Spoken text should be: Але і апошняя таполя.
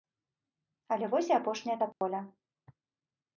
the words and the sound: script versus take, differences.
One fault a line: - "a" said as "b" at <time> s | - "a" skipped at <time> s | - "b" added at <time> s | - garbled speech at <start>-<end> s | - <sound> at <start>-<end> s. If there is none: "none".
- "вось" added at 1.1 s
- dropout at 1.9-2.0 s